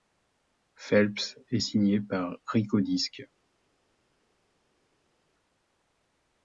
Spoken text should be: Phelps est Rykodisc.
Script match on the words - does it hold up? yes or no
no